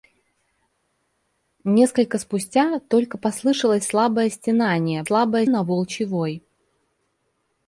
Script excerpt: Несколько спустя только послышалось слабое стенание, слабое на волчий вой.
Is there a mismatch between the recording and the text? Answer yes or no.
no